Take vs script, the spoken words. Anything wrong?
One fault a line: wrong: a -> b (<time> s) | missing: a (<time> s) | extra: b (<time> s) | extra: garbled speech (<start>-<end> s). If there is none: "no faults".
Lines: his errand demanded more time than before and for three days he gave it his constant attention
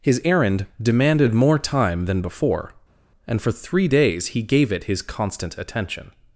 no faults